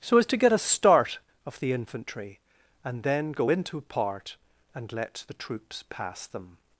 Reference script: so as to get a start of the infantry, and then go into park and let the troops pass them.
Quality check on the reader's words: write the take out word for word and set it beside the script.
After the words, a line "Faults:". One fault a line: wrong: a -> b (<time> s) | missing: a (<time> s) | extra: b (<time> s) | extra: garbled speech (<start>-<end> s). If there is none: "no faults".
so as to get a start of the infantry, and then go into part and let the troops pass them.
Faults:
wrong: park -> part (3.8 s)